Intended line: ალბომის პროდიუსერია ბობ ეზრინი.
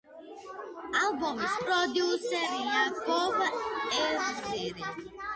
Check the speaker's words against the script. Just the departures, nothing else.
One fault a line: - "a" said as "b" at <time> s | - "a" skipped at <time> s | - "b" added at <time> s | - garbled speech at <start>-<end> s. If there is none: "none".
none